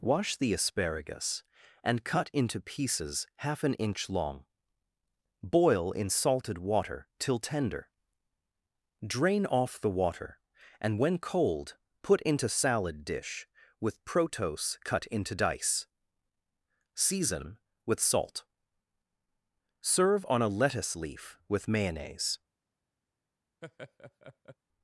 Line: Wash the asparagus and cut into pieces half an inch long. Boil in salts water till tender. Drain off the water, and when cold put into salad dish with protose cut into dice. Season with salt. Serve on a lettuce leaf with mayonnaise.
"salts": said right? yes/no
no